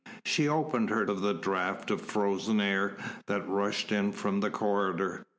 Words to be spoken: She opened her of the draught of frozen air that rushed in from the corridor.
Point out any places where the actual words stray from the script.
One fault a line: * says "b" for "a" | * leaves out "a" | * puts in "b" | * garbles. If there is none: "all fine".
all fine